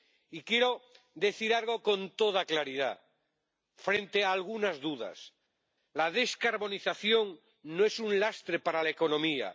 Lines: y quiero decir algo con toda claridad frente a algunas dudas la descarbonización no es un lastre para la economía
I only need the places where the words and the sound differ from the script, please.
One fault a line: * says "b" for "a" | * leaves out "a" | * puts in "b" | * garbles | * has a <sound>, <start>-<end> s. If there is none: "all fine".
all fine